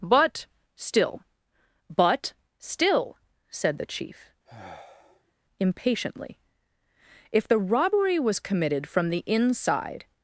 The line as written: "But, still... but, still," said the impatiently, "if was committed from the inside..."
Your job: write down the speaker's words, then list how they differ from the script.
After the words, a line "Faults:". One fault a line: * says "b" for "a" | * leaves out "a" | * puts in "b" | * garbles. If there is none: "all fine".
"But, still... but, still," said the chief, impatiently, "if the robbery was committed from the inside..."
Faults:
* puts in "chief"
* puts in "the robbery"